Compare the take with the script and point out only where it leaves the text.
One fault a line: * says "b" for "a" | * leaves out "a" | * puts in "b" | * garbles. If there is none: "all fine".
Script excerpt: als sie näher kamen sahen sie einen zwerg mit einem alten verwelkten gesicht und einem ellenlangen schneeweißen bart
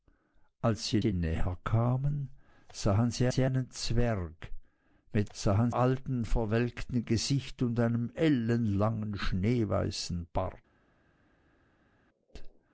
* puts in "sie"
* puts in "sie"
* says "sahen" for "einem"